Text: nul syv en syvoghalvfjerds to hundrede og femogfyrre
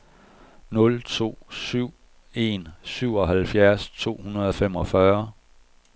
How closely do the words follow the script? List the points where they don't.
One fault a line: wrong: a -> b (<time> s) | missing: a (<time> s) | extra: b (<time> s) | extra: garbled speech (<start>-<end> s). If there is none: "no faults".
extra: to (1.0 s)